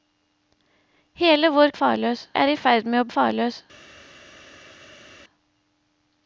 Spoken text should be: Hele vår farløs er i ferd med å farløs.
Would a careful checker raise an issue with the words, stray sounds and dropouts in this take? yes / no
no